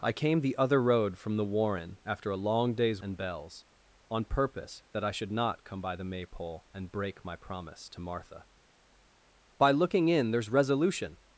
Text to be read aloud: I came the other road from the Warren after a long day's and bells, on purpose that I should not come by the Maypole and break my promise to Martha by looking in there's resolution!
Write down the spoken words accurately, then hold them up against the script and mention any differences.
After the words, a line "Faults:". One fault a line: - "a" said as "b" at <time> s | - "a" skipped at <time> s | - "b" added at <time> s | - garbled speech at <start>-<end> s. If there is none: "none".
I came the other road from the Warren after a long day's and bells, on purpose that I should not come by the Maypole and break my promise to Martha by looking in there's resolution!
Faults:
none